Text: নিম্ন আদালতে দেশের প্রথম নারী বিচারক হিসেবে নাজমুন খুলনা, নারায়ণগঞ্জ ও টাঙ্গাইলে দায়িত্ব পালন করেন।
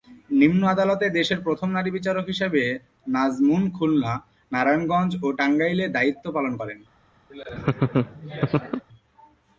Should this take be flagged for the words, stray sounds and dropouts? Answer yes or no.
yes